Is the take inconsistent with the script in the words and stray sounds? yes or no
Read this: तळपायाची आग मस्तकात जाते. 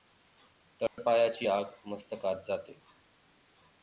yes